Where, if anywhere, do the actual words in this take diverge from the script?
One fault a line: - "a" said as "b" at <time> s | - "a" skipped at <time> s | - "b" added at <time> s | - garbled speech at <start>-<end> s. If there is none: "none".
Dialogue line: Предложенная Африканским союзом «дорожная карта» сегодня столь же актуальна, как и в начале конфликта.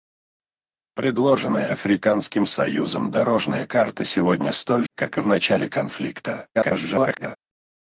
- "же актуальна" skipped at 4.8 s
- garbled speech at 6.5-7.4 s